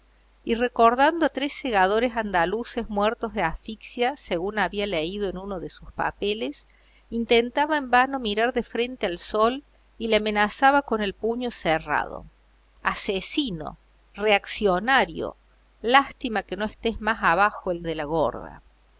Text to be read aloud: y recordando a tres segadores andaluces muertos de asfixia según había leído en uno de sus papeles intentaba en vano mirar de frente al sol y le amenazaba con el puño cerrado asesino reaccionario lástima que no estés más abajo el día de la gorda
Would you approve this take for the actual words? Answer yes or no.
no